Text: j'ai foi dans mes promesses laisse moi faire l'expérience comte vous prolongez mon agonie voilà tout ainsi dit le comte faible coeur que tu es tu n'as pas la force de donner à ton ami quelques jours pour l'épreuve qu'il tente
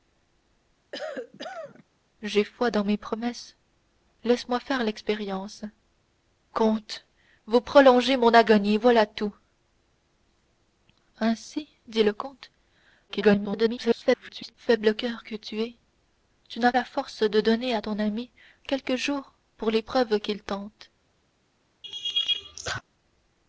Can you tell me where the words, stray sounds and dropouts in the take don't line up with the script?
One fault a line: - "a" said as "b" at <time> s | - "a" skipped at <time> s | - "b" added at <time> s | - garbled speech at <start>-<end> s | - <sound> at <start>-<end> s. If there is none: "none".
- cough at 0.9-1.8 s
- garbled speech at 13.1-14.5 s
- "pas" skipped at 16.7 s
- laugh at 21.8-22.8 s